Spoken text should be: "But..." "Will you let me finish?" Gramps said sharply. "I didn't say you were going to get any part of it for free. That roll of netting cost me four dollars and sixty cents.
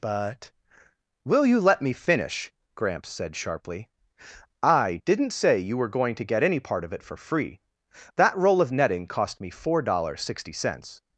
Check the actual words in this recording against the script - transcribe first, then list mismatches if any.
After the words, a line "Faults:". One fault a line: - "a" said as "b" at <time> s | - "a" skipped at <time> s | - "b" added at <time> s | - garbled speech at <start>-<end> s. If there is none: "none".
"But..." "Will you let me finish?" Gramps said sharply. "I didn't say you were going to get any part of it for free. That roll of netting cost me four dollars and sixty cents.
Faults:
none